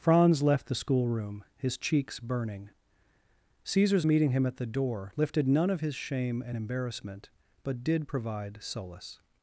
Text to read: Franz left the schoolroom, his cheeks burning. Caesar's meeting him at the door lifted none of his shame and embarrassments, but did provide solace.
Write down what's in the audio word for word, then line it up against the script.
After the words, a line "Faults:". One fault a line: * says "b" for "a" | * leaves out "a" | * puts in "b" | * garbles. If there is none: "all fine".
Franz left the schoolroom, his cheeks burning. Caesar's meeting him at the door lifted none of his shame and embarrassment, but did provide solace.
Faults:
* says "embarrassment" for "embarrassments"